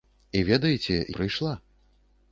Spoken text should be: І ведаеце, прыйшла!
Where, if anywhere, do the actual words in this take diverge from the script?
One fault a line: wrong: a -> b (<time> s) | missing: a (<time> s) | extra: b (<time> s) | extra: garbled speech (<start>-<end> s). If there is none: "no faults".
no faults